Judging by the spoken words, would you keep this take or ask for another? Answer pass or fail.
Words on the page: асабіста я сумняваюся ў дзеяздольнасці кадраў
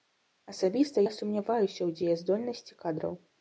pass